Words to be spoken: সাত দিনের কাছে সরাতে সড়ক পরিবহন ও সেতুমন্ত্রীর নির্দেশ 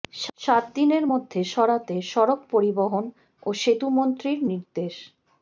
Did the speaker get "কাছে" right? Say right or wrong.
wrong